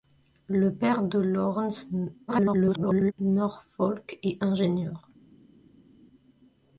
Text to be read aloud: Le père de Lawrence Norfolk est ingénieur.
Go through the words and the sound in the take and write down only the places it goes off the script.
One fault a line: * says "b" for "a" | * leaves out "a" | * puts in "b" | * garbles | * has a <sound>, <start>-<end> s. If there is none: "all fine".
* garbles